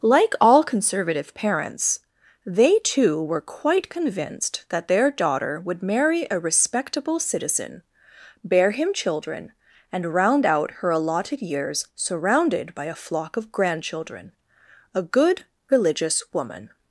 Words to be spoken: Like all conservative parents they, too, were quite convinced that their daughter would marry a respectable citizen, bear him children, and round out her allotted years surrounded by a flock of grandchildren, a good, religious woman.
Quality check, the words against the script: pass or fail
pass